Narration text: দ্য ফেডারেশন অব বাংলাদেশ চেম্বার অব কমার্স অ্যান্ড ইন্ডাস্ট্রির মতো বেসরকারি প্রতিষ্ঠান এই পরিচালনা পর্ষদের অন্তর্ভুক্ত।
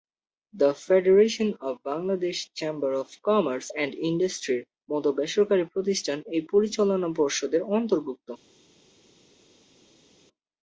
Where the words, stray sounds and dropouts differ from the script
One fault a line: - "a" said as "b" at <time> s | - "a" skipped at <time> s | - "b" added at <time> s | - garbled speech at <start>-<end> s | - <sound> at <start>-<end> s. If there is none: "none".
none